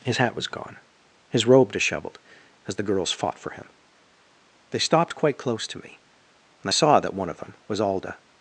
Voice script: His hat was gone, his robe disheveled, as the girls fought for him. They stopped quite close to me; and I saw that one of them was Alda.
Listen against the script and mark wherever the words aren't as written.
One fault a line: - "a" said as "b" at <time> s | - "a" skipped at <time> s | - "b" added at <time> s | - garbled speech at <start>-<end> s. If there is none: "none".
none